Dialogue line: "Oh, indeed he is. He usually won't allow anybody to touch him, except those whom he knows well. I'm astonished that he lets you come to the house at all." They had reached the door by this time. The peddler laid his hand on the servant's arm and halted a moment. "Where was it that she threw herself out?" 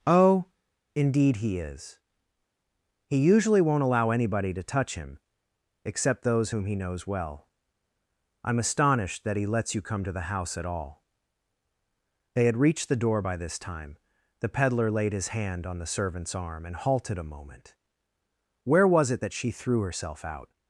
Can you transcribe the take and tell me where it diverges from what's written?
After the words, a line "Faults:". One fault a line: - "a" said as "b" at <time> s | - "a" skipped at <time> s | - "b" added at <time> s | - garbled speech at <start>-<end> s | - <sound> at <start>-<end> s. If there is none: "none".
"Oh, indeed he is. He usually won't allow anybody to touch him, except those whom he knows well. I'm astonished that he lets you come to the house at all." They had reached the door by this time. The peddler laid his hand on the servant's arm and halted a moment. "Where was it that she threw herself out?"
Faults:
none